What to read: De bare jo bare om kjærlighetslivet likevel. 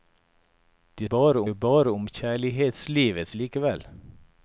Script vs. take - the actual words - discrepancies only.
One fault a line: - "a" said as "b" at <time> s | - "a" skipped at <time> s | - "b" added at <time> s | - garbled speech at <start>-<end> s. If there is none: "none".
none